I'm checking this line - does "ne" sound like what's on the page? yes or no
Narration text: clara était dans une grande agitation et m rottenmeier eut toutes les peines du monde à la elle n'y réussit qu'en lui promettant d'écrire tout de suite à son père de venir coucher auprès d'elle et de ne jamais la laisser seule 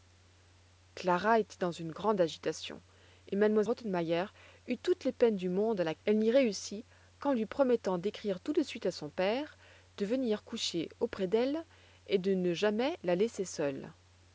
yes